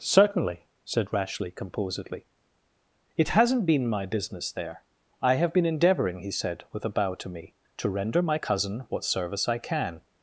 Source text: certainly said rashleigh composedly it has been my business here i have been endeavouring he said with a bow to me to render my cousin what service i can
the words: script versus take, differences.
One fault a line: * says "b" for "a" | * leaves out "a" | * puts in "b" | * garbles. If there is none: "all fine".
* says "hasn't" for "has"
* says "there" for "here"